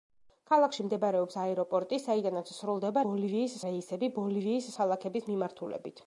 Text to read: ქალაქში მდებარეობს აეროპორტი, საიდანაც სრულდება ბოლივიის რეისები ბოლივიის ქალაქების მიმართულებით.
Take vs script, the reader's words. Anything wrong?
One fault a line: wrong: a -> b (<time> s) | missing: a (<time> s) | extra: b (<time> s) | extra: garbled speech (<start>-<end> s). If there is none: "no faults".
no faults